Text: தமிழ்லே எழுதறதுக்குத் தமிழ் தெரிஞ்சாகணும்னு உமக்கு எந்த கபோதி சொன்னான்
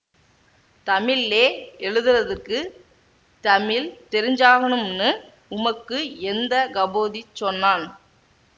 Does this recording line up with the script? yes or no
yes